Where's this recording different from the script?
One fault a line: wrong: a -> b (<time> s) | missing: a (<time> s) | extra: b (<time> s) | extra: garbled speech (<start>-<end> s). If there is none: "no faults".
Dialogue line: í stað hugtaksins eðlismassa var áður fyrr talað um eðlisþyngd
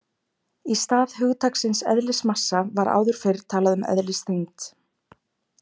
no faults